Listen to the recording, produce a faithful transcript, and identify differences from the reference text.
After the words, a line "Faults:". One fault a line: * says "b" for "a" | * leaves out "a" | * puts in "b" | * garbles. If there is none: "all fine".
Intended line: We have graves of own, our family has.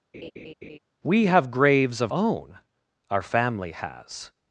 We have graves of own, our family has.
Faults:
all fine